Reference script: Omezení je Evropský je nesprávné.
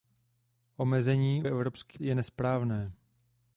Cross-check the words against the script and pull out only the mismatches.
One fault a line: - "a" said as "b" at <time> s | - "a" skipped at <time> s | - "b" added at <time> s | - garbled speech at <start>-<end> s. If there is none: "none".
none